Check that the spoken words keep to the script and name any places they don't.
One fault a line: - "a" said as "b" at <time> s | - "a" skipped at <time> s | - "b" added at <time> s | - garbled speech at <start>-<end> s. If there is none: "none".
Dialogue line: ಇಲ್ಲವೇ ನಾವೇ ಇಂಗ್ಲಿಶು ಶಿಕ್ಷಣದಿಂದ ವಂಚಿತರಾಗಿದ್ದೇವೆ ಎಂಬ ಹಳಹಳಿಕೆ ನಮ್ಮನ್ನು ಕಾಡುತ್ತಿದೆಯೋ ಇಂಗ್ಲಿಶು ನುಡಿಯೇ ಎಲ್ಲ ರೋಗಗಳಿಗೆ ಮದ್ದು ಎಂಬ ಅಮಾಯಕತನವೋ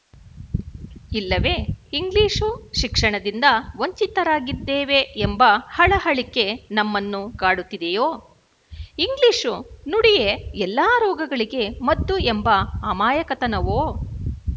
- "ನಾವೇ" skipped at 1.5 s